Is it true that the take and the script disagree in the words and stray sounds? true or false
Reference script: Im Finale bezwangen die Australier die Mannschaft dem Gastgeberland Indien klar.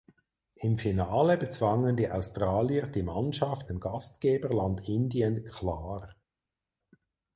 false